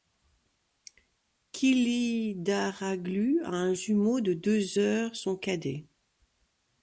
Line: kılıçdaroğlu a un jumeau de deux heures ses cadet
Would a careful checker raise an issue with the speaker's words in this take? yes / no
yes